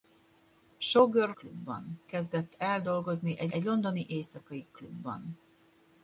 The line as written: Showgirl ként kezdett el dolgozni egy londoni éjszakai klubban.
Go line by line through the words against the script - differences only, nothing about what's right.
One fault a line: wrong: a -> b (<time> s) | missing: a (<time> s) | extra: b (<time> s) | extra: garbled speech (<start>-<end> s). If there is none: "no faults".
wrong: ként -> klubban (1.3 s)
extra: egy (3.5 s)